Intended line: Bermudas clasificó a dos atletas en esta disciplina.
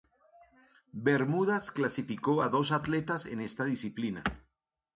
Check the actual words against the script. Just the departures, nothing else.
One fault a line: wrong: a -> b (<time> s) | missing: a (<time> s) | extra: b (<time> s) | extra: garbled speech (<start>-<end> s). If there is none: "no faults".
no faults